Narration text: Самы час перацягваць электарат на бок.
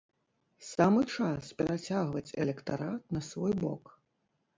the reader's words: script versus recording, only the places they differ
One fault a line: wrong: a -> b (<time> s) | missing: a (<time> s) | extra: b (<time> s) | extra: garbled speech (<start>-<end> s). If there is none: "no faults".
extra: свой (3.3 s)